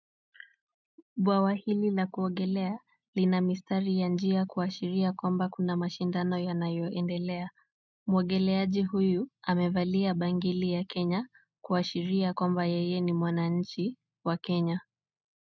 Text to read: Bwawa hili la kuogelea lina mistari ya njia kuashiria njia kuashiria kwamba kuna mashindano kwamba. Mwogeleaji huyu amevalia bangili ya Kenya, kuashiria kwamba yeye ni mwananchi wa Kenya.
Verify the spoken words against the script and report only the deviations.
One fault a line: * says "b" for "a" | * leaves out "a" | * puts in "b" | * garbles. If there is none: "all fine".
* leaves out "njia kuashiria"
* says "yanayoendelea" for "kwamba"